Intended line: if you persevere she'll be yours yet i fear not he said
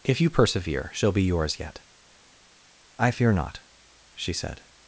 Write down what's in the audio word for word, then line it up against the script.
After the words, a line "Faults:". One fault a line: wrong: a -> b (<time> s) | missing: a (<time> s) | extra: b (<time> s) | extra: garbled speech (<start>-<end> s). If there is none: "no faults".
if you persevere she'll be yours yet i fear not she said
Faults:
wrong: he -> she (4.1 s)